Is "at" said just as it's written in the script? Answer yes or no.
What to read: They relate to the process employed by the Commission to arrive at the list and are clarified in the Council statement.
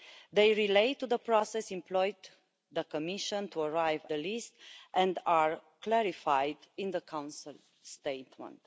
no